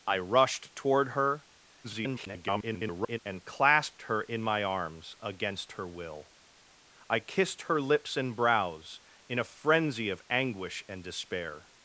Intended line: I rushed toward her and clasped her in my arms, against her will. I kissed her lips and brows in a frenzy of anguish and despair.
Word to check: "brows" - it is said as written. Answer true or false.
true